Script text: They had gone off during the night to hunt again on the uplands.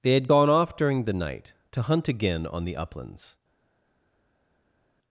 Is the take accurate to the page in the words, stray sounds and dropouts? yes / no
yes